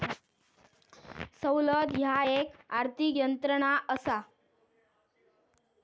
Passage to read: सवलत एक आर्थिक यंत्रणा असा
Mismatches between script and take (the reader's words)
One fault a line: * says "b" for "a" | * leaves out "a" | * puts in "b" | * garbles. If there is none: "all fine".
* puts in "ह्या"